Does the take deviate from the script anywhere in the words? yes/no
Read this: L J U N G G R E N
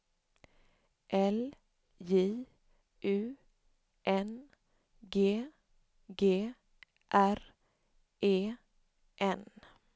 no